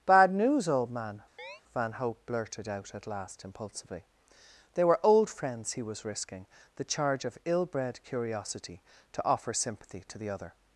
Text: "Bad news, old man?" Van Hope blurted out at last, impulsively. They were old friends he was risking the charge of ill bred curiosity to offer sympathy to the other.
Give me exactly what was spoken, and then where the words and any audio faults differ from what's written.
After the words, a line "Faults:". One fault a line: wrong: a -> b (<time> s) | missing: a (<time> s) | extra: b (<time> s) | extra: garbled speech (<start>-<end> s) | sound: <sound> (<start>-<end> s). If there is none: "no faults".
"Bad news, old man?" Van Hope blurted out at last, impulsively. They were old friends he was risking the charge of ill bred curiosity to offer sympathy to the other.
Faults:
sound: chirp (1.4-1.6 s)